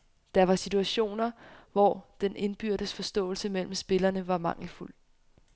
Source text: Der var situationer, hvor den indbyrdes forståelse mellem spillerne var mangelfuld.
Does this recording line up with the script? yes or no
yes